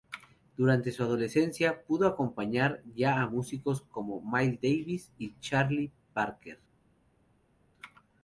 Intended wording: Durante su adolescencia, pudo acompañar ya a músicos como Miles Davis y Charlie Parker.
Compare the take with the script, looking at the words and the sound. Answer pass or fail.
pass